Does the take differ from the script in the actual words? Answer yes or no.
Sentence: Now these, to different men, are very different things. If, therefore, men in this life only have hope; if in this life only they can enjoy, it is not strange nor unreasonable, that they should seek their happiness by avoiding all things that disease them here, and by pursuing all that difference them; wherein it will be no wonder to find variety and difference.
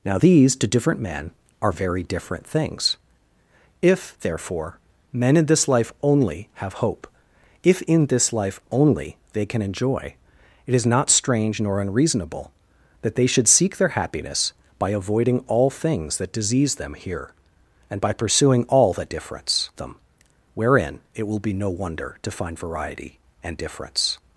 no